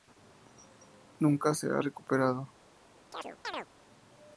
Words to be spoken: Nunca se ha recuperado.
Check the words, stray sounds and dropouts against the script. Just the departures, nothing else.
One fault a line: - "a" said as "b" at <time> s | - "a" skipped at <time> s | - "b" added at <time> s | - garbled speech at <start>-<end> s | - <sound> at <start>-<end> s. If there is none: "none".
- chirp at 3.1-3.7 s